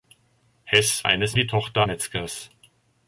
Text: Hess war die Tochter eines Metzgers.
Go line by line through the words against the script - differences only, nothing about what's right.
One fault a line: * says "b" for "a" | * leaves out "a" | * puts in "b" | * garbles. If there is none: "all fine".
* says "eines" for "war"
* leaves out "eines"